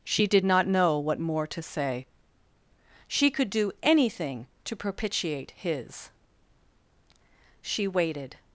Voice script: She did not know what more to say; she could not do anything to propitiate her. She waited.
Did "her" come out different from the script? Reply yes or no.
yes